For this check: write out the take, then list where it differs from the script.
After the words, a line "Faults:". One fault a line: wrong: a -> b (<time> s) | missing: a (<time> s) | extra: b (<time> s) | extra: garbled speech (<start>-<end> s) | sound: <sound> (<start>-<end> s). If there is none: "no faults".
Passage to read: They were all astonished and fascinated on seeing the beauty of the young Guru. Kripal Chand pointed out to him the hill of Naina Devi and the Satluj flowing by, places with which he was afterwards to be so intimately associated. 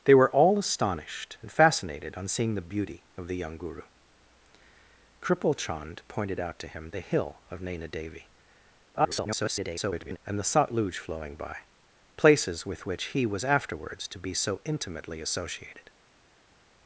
They were all astonished and fascinated on seeing the beauty of the young Guru. Kripal Chand pointed out to him the hill of Naina Devi [garbled] and the Satluj flowing by, places with which he was afterwards to be so intimately associated.
Faults:
extra: garbled speech (8.9-10.2 s)